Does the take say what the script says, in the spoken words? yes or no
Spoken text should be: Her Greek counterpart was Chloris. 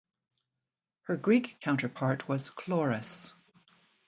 yes